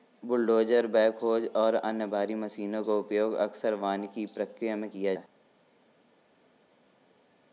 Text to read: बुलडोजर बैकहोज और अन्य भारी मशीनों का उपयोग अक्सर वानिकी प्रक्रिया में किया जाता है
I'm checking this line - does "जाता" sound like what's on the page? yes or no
no